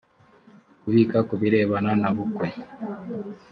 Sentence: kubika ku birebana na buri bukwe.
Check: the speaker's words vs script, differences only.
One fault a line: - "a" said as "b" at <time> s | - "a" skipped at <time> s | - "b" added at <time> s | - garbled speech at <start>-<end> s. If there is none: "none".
- "buri" skipped at 2.1 s